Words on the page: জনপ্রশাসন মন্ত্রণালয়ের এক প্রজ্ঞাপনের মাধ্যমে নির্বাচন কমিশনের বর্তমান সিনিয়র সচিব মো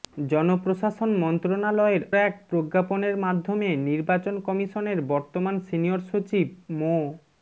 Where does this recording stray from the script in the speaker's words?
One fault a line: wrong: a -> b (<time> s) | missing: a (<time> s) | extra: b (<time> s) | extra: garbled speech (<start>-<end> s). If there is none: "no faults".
no faults